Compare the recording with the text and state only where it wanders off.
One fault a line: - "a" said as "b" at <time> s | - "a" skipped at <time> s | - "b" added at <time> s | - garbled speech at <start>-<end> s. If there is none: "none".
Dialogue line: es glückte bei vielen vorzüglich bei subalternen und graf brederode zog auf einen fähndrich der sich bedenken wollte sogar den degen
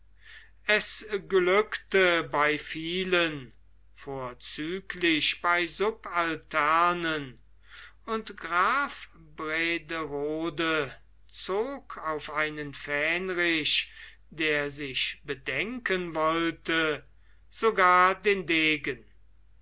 none